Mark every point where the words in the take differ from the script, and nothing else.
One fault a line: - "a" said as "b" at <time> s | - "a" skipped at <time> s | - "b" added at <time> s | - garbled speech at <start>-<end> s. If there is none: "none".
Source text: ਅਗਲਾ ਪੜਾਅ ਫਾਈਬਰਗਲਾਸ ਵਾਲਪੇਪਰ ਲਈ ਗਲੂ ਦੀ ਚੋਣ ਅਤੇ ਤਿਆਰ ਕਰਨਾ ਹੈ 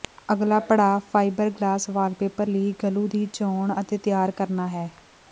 none